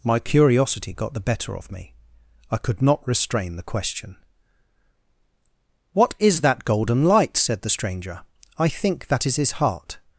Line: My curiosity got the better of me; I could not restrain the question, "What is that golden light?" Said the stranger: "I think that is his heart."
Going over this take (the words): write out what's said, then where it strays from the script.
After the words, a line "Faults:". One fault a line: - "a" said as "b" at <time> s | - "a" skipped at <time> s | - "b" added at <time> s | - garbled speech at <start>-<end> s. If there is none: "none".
My curiosity got the better of me; I could not restrain the question, "What is that golden light?" Said the stranger: "I think that is his heart."
Faults:
none